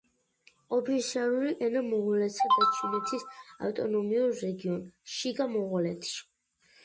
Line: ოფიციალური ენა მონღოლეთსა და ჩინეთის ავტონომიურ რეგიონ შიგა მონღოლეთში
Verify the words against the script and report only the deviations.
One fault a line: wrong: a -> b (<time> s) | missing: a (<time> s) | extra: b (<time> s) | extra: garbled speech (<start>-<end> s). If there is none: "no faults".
no faults